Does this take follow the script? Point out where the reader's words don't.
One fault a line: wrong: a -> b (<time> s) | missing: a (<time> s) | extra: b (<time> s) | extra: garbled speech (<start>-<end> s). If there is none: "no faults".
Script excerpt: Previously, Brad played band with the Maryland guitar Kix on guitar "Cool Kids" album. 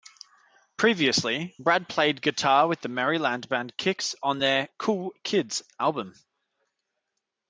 wrong: band -> guitar (2.2 s)
wrong: guitar -> band (3.5 s)
wrong: guitar -> their (4.4 s)